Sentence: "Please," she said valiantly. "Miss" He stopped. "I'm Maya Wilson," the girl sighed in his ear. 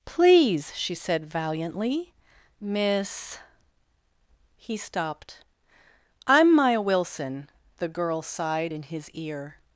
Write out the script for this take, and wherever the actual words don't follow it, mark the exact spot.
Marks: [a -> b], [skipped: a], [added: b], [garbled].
"Please," she said valiantly. "Miss" He stopped. "I'm Maya Wilson," the girl sighed in his ear.